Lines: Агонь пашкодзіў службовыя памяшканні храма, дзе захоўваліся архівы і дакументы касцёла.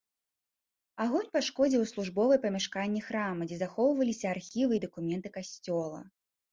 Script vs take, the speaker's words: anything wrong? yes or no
no